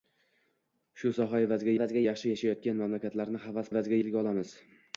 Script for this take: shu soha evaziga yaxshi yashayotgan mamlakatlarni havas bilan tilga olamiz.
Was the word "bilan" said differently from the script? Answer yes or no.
yes